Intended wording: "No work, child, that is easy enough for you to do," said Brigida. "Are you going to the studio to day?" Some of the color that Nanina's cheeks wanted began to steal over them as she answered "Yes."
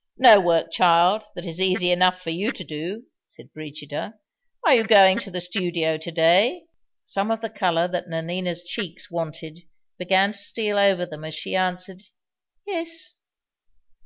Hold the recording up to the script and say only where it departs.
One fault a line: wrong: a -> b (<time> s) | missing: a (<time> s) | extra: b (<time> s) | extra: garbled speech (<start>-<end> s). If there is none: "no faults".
no faults